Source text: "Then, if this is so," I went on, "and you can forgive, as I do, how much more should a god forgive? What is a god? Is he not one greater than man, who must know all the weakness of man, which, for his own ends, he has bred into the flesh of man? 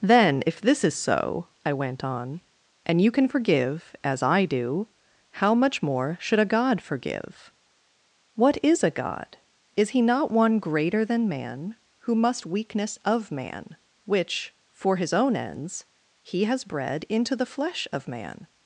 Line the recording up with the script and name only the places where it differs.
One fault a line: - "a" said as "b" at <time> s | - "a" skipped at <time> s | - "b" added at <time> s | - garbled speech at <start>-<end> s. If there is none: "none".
- "know all the" skipped at 12.4 s